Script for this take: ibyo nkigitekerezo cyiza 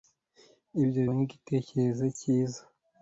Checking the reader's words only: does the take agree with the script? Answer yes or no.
yes